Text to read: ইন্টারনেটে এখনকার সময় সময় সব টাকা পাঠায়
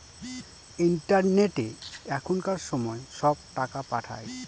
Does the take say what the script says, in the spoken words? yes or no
no